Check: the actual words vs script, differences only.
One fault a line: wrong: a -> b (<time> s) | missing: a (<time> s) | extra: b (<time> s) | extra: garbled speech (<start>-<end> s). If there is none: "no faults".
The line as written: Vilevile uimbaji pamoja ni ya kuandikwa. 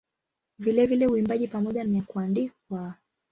no faults